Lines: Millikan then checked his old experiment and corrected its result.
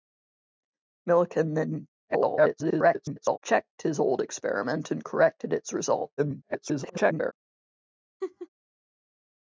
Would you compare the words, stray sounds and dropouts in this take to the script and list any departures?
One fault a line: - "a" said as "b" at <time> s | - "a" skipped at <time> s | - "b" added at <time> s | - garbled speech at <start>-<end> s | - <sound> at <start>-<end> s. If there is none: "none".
- garbled speech at 2.1-3.4 s
- garbled speech at 6.2-7.3 s
- laugh at 8.2-8.5 s